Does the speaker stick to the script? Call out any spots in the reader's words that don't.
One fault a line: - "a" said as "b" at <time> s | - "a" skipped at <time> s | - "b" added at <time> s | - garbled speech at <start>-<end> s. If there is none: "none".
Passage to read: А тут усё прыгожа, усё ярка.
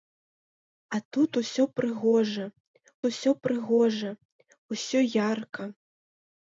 - "прыгожа усё" added at 3.5 s